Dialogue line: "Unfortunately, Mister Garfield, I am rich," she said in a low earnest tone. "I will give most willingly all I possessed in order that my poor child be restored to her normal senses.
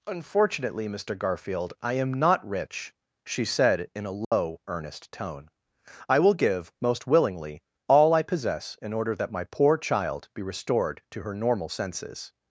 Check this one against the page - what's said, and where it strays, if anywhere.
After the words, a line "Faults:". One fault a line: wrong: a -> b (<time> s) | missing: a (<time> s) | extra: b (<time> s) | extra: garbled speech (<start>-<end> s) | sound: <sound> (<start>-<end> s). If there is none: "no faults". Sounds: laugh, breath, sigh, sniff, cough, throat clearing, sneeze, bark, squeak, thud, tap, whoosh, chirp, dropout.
"Unfortunately, Mister Garfield, I am not rich," she said in a low earnest tone. "I will give most willingly all I possess in order that my poor child be restored to her normal senses.
Faults:
extra: not (2.1 s)
sound: dropout (4.2-4.3 s)
wrong: possessed -> possess (8.2 s)